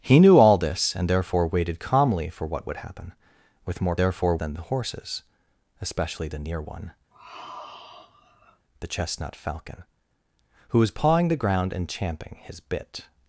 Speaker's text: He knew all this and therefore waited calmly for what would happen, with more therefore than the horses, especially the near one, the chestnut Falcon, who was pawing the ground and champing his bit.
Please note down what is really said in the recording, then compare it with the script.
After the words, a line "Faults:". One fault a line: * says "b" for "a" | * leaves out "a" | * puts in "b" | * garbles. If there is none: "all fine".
He knew all this and therefore waited calmly for what would happen, with more therefore than the horses, especially the near one, the chestnut Falcon, who was pawing the ground and champing his bit.
Faults:
all fine